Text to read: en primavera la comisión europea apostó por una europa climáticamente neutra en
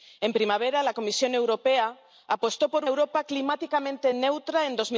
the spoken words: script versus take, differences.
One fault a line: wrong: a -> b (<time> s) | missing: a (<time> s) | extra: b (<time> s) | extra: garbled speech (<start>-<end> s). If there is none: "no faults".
missing: una (2.9 s)